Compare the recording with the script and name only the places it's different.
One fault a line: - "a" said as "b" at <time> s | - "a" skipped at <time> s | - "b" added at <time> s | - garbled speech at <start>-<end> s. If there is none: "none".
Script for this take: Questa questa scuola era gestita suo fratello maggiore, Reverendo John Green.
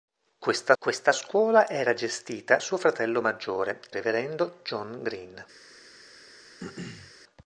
none